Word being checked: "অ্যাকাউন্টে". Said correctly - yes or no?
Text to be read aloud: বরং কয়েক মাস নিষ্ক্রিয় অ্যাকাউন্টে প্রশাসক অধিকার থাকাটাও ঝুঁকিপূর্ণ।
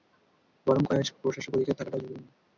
no